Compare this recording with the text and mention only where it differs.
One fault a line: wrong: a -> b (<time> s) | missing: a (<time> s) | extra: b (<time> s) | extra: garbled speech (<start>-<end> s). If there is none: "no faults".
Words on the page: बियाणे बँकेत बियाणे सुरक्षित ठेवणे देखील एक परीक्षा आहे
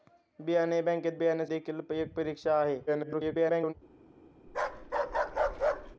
missing: सुरक्षित ठेवणे (1.5 s)
extra: garbled speech (2.9-3.7 s)